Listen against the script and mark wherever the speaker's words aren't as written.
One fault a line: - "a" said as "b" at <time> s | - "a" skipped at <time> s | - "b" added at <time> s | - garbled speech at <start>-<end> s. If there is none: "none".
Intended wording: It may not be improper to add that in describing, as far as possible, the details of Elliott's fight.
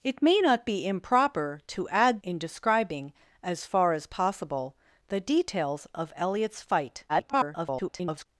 - "that" skipped at 2.2 s
- garbled speech at 7.1-8.3 s